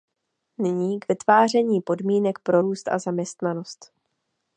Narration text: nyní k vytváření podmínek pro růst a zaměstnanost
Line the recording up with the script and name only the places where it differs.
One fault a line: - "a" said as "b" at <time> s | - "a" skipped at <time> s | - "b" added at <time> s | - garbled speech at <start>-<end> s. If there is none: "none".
none